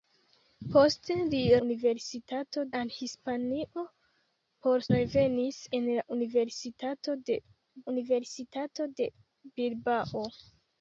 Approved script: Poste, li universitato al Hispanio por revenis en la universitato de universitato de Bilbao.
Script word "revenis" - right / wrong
right